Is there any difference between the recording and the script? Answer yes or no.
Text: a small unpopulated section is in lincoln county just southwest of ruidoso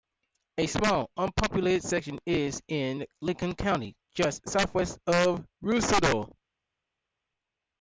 no